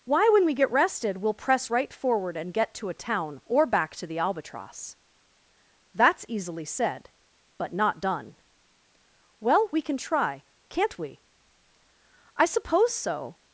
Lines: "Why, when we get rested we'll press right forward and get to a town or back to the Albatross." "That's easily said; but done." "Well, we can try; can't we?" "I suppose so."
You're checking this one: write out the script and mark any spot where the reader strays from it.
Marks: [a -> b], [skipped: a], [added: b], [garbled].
"Why, when we get rested we'll press right forward and get to a town or back to the Albatross." "That's easily said; but [added: not] done." "Well, we can try; can't we?" "I suppose so."